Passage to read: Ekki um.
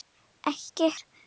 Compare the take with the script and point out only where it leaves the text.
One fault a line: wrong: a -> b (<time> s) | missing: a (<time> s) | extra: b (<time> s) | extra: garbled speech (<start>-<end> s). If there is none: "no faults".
no faults